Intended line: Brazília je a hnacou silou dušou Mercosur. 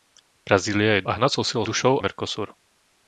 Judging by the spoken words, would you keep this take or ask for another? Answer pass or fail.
pass